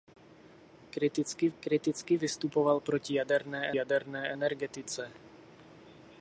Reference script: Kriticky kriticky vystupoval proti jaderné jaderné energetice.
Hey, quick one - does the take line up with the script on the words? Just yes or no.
yes